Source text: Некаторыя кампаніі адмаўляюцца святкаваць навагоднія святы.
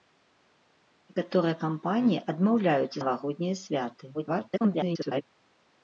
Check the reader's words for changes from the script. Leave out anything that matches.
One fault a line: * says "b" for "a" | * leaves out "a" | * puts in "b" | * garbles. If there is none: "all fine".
* leaves out "святкаваць"
* garbles